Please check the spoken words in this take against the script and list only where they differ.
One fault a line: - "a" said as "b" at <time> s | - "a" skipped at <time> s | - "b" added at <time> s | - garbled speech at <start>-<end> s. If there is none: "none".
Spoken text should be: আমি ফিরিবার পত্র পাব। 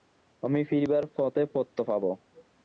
- "পথে" added at 1.2 s